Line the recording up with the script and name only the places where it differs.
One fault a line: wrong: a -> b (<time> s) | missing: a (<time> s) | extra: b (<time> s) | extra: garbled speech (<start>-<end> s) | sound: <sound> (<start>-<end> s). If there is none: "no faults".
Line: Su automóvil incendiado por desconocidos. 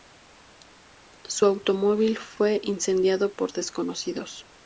extra: fue (2.2 s)